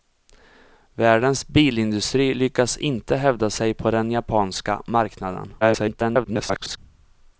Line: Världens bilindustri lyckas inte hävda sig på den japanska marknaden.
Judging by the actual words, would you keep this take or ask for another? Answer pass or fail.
fail